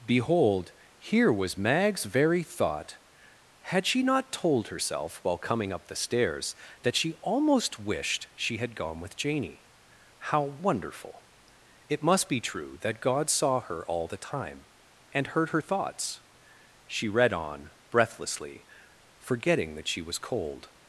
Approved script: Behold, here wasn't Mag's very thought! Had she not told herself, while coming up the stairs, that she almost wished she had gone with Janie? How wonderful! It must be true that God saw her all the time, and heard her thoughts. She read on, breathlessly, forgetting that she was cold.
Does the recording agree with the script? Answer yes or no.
no